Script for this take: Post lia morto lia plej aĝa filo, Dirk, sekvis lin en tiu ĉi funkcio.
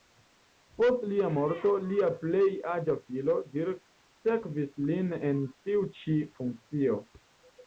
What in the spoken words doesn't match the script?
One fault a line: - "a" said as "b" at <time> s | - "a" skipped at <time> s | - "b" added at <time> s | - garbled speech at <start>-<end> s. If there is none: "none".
none